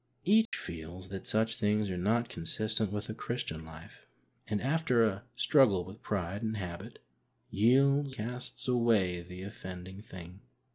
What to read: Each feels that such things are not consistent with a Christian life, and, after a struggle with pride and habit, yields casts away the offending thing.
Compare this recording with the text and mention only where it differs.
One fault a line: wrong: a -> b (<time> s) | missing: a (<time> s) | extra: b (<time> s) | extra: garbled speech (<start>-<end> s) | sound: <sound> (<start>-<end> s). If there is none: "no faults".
sound: dropout (0.5-0.5 s)